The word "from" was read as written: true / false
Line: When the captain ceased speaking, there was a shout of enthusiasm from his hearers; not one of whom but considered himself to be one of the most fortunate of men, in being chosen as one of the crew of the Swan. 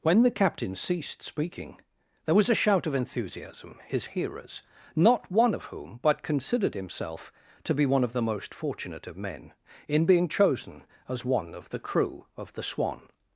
false